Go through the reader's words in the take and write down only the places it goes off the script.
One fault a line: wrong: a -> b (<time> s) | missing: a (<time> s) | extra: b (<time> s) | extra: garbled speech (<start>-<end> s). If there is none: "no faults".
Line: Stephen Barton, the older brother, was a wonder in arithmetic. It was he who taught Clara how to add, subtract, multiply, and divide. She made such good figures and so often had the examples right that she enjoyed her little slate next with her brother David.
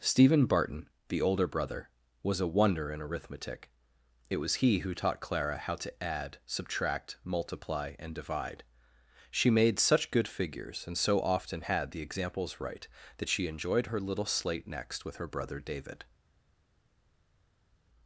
no faults